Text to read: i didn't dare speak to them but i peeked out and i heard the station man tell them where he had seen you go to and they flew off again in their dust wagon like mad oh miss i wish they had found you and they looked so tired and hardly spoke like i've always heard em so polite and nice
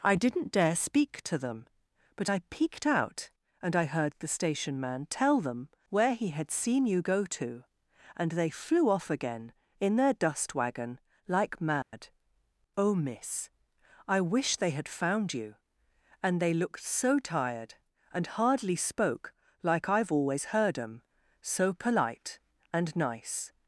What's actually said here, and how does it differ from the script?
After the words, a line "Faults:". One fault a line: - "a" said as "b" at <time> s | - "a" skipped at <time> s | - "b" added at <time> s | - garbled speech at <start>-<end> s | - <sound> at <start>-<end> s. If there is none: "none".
i didn't dare speak to them but i peeked out and i heard the station man tell them where he had seen you go to and they flew off again in their dust wagon like mad oh miss i wish they had found you and they looked so tired and hardly spoke like i've always heard em so polite and nice
Faults:
- dropout at 11.8-11.9 s